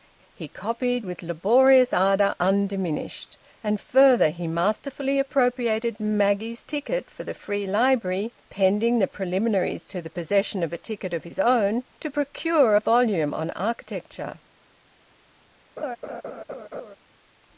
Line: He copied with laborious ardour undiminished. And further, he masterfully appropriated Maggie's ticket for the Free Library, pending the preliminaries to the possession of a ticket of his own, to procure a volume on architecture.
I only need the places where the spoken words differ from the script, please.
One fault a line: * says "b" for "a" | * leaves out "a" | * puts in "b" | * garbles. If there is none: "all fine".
all fine